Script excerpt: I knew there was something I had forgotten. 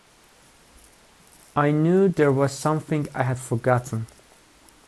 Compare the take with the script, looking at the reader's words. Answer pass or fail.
pass